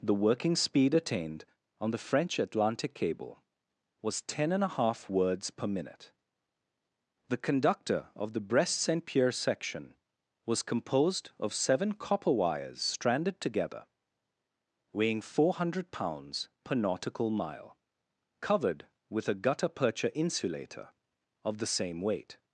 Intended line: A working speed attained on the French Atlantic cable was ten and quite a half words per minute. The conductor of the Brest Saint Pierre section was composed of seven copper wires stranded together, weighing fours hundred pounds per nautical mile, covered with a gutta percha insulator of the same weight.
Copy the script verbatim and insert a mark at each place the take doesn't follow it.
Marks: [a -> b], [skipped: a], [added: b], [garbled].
[A -> The] working speed attained on the French Atlantic cable was ten and [skipped: quite] a half words per minute. The conductor of the Brest Saint Pierre section was composed of seven copper wires stranded together, weighing [fours -> four] hundred pounds per nautical mile, covered with a gutta percha insulator of the same weight.